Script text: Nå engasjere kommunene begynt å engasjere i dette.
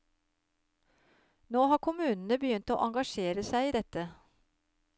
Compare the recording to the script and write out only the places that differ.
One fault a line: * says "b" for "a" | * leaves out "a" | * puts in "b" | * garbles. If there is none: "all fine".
* says "har" for "engasjere"
* puts in "seg"